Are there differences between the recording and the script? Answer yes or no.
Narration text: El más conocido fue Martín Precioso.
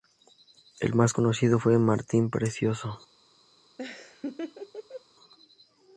no